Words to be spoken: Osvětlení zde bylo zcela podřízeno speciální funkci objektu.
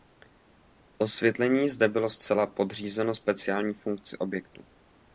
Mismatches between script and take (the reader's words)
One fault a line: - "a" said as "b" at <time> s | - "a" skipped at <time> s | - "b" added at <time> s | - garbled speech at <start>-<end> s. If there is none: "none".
none